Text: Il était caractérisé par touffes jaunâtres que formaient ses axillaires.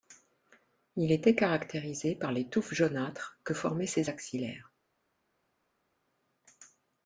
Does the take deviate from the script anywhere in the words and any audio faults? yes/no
yes